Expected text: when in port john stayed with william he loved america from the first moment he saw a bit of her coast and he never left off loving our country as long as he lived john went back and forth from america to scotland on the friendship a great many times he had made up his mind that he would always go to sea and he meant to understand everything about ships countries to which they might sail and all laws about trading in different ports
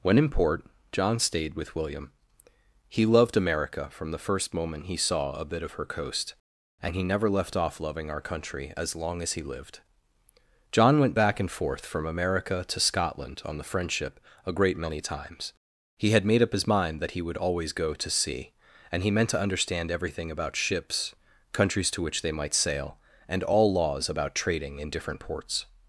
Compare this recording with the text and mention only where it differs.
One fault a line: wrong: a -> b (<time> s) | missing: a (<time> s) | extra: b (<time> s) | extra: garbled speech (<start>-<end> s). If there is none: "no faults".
no faults